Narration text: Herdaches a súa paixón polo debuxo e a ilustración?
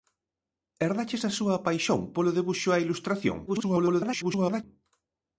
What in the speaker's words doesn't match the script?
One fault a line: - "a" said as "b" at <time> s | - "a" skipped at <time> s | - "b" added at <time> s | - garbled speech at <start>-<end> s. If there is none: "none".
- garbled speech at 3.5-4.6 s